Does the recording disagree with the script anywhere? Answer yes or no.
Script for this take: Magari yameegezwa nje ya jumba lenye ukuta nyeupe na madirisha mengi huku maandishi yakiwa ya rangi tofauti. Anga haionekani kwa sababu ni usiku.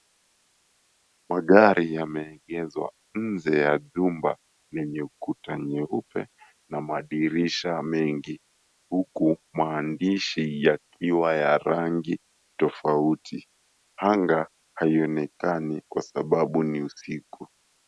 no